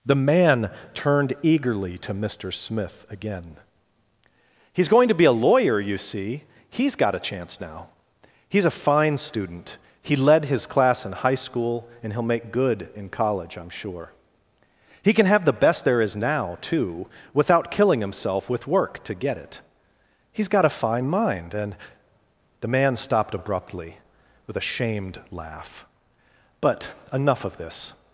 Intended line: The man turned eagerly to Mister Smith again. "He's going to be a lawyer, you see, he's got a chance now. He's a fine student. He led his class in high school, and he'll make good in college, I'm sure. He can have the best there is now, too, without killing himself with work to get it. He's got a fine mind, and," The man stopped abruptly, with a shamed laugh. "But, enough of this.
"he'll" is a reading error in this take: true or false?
false